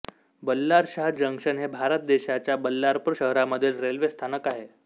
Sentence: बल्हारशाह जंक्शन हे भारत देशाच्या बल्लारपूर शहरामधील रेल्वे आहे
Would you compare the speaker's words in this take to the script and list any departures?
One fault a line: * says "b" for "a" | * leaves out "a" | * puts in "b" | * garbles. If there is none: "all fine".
* puts in "स्थानक"